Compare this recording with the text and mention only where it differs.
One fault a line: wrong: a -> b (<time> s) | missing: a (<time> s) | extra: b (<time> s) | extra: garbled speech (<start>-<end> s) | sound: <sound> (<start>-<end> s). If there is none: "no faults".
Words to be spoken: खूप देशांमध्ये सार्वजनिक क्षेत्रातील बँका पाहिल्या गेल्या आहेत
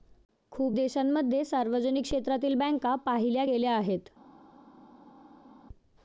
no faults